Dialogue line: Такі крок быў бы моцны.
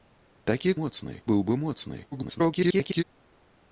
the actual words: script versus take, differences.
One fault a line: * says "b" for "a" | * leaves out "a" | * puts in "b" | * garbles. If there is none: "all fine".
* says "моцны" for "крок"
* garbles